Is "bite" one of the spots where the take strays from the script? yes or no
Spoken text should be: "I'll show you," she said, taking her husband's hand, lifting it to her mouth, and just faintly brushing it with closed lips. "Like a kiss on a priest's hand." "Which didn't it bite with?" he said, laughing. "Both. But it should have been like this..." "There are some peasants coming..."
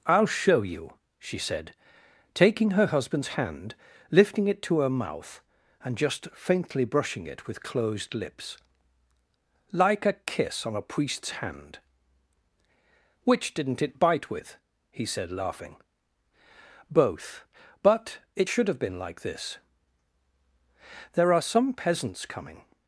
no